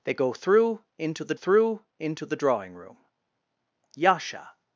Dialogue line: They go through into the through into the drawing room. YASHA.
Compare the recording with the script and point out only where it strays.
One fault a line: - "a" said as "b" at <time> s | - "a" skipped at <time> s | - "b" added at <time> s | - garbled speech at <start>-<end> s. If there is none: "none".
none